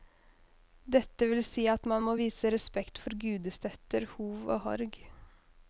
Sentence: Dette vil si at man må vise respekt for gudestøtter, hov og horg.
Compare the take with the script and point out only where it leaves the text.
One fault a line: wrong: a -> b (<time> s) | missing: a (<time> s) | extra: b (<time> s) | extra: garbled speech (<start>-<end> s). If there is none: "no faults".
no faults